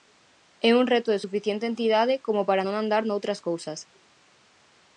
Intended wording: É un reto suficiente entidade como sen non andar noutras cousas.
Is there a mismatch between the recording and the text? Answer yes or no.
yes